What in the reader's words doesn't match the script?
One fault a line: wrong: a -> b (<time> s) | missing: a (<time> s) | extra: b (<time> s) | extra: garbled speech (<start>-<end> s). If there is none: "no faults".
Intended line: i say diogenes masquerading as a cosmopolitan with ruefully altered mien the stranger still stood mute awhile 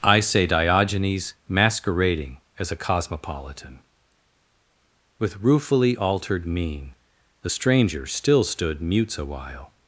wrong: mute -> mutes (8.8 s)